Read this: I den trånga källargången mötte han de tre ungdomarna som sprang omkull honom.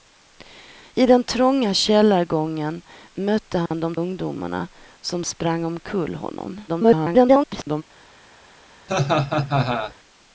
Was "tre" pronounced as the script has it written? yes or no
no